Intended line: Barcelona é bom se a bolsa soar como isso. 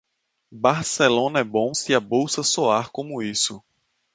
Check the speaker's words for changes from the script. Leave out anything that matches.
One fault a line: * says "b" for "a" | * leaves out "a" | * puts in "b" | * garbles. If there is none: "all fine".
all fine